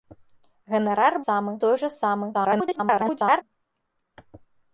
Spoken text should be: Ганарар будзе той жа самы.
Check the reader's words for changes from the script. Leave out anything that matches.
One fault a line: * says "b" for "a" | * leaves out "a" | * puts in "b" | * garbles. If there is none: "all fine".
* says "самы" for "будзе"
* garbles